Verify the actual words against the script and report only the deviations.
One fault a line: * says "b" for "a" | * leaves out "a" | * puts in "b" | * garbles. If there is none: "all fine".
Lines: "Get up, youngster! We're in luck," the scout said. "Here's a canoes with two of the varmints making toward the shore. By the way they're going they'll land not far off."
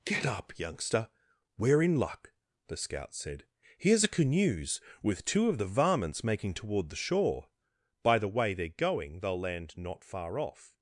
all fine